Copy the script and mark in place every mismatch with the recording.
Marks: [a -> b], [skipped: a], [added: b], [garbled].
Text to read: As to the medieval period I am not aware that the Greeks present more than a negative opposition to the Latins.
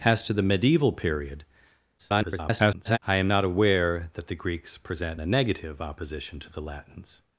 As to the medieval period [garbled] I am not aware that the Greeks present [skipped: more than] a negative opposition to the Latins.